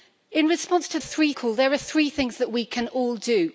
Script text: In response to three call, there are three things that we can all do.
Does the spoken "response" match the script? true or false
true